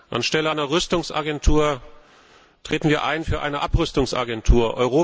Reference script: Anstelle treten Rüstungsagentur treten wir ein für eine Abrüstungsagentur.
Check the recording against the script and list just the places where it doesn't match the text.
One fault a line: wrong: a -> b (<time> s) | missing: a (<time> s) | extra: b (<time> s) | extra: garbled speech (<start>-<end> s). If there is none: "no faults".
wrong: treten -> einer (0.5 s)